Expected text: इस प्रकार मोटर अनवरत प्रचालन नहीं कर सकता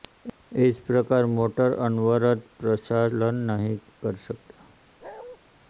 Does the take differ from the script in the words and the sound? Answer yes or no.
yes